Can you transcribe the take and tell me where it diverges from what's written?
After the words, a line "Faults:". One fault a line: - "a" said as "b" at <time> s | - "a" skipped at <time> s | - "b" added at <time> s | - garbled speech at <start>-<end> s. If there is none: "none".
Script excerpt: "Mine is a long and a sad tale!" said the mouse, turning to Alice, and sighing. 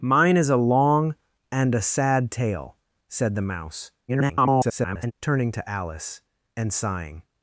"Mine is a long and a sad tale!" said the mouse, [garbled] turning to Alice, and sighing.
Faults:
- garbled speech at 4.1-5.1 s